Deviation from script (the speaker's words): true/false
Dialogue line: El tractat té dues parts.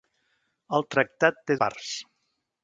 true